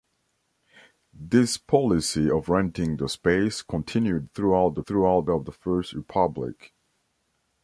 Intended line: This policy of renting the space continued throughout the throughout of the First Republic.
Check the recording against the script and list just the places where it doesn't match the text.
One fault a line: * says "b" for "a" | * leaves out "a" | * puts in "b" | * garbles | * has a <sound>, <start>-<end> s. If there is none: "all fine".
all fine